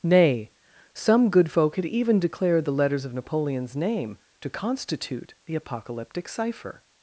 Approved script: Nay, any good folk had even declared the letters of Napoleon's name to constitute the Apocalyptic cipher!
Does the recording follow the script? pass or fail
fail